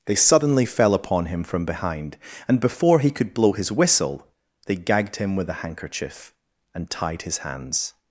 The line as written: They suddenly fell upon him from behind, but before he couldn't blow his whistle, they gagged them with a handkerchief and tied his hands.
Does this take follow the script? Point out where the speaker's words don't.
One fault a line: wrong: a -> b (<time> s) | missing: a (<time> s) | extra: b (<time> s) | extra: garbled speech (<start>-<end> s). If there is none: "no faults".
wrong: but -> and (2.5 s)
wrong: couldn't -> could (3.1 s)
wrong: them -> him (5.2 s)